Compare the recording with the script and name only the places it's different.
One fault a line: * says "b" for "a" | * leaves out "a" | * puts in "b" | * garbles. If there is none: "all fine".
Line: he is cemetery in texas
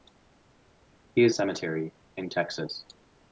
all fine